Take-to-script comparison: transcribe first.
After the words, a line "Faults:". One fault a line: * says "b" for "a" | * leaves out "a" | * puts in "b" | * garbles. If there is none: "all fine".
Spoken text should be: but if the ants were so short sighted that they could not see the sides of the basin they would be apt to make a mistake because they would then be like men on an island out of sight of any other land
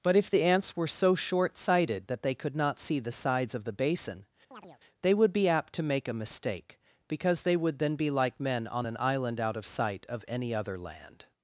but if the ants were so short sighted that they could not see the sides of the basin they would be apt to make a mistake because they would then be like men on an island out of sight of any other land
Faults:
all fine